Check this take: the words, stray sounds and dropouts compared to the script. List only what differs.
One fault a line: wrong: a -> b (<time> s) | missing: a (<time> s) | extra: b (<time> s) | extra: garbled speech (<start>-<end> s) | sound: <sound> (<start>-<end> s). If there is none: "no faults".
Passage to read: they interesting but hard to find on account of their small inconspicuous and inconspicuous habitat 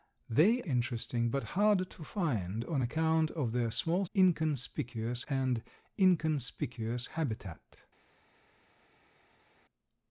no faults